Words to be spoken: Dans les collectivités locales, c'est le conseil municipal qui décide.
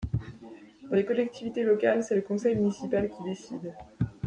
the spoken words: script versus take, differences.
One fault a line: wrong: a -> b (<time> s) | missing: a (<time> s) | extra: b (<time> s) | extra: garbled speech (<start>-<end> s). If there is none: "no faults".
no faults